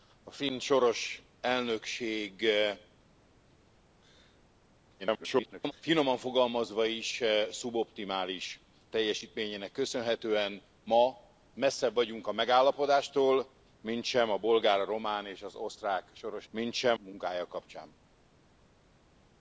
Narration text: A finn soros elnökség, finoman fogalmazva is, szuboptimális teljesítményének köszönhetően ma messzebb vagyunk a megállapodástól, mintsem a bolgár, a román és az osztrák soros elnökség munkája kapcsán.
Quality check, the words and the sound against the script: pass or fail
fail